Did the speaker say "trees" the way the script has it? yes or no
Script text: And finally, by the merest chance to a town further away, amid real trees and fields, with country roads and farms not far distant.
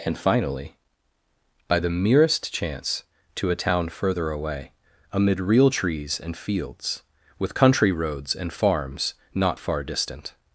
yes